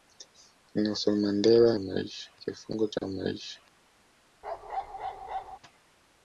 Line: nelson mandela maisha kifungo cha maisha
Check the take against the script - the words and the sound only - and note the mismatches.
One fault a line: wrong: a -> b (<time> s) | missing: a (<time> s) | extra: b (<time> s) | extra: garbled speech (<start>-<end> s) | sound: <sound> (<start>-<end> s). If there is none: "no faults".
sound: bark (4.4-5.6 s)